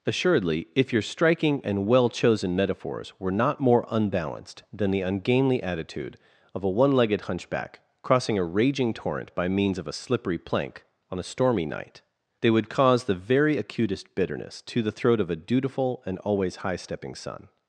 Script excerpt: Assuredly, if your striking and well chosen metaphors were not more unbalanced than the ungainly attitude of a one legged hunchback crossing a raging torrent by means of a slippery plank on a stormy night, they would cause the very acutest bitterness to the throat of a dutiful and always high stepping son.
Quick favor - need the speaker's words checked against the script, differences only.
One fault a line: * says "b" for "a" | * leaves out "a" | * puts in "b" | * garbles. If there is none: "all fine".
all fine